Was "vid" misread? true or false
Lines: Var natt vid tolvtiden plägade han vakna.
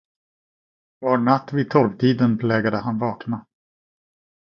false